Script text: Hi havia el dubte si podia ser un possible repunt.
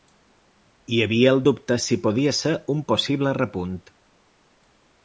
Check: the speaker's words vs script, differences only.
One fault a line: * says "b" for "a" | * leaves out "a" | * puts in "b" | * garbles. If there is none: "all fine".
all fine